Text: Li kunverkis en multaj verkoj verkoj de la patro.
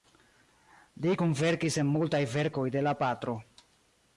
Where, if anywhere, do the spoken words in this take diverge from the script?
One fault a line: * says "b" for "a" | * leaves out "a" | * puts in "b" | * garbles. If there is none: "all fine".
* leaves out "verkoj"